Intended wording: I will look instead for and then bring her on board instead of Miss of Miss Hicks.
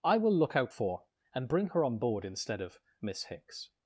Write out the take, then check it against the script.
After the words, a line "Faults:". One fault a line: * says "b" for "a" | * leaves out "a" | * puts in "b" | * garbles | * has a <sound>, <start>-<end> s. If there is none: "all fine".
I will look out for and bring her on board instead of Miss Hicks.
Faults:
* says "out" for "instead"
* leaves out "then"
* leaves out "of Miss"